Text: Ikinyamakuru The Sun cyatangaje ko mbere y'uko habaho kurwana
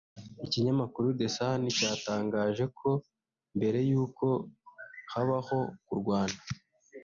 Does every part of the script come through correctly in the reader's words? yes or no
yes